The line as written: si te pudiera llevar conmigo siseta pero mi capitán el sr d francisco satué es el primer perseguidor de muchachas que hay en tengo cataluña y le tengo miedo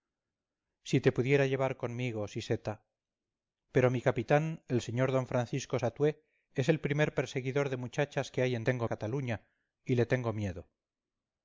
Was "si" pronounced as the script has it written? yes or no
yes